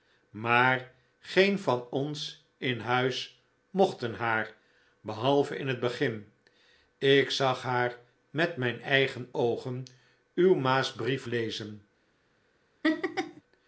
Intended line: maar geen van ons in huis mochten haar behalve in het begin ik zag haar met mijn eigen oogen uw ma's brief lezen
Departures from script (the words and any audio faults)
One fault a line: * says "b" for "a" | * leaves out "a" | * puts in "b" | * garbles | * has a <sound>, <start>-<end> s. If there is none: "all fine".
* has a laugh, 12.8-13.4 s